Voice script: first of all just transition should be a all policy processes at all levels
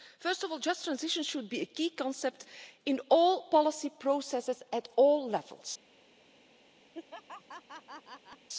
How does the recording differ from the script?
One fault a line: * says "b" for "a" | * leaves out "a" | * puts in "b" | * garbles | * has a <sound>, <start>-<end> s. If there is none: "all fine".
* puts in "key concept in"
* has a laugh, 6.9-8.5 s